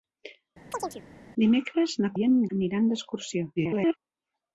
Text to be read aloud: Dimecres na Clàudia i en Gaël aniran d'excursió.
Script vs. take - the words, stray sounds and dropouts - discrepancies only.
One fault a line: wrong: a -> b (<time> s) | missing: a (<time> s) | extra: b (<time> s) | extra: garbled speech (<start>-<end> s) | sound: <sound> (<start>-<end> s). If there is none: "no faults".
sound: chirp (0.7-1.0 s)
missing: Clàudia (2.1 s)
missing: Gaël (2.4 s)
extra: garbled speech (3.6-4.0 s)